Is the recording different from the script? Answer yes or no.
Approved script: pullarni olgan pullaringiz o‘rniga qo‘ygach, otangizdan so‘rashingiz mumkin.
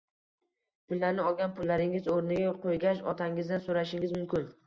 no